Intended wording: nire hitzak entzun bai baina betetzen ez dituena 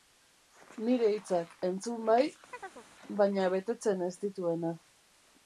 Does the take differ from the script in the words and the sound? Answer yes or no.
yes